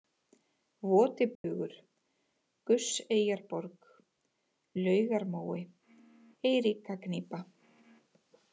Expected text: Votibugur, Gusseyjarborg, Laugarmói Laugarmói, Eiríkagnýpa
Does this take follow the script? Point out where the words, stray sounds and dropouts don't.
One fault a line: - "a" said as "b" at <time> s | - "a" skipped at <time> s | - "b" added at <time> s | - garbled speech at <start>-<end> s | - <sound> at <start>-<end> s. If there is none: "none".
- dropout at 1.4-1.4 s
- "Laugarmói" skipped at 5.6 s